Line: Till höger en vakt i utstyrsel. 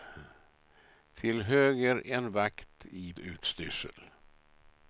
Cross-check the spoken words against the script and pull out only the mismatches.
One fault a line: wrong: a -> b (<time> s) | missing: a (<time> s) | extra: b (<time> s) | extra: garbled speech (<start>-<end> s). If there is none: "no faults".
no faults